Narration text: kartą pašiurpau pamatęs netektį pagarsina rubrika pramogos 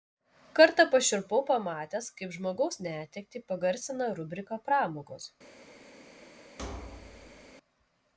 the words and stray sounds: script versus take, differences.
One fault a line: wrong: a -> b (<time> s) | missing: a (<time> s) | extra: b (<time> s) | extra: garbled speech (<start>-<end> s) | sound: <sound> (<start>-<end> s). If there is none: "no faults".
extra: kaip žmogaus (2.2 s)
sound: thud (6.6-7.5 s)